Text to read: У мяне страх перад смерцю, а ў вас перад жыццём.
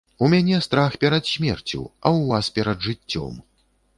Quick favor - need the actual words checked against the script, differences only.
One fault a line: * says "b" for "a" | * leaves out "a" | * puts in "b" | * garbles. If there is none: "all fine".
all fine